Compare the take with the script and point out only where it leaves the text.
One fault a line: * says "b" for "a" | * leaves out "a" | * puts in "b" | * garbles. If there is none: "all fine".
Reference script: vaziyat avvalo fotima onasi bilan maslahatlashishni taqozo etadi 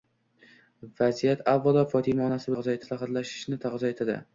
* says "taqozo" for "bilan"